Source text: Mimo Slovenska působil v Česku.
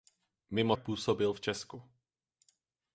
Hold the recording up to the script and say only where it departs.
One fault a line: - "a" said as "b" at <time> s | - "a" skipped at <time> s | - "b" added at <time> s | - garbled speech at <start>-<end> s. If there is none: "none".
- "Slovenska" skipped at 0.8 s